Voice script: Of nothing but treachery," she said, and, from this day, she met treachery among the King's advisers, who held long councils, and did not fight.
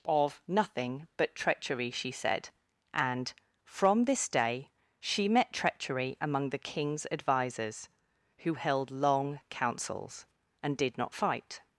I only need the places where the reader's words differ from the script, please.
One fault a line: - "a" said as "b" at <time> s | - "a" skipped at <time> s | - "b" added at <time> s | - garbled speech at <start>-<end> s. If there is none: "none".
none